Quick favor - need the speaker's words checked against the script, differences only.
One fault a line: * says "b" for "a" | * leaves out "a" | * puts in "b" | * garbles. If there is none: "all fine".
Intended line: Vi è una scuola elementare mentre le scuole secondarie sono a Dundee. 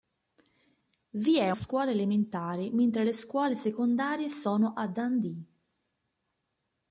* leaves out "una"